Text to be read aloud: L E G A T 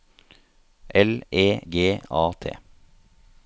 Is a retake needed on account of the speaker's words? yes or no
no